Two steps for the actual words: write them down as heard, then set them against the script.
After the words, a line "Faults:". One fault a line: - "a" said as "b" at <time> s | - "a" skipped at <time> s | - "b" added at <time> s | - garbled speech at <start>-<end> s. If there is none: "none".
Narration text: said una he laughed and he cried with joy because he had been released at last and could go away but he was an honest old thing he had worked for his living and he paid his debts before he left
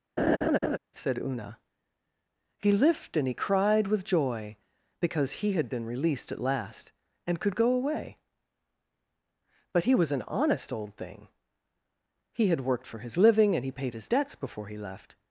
said una he lift and he cried with joy because he had been released at last and could go away but he was an honest old thing he had worked for his living and he paid his debts before he left
Faults:
- "laughed" said as "lift" at 2.7 s